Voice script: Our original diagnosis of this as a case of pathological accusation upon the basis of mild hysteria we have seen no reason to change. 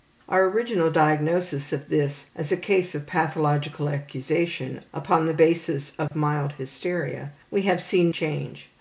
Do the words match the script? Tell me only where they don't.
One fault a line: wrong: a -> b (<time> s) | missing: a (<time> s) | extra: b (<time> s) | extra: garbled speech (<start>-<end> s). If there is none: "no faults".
missing: no reason to (8.1 s)